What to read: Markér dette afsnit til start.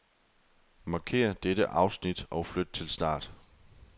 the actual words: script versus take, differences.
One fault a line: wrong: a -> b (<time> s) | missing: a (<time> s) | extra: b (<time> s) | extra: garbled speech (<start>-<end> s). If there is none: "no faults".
extra: og flyt (2.3 s)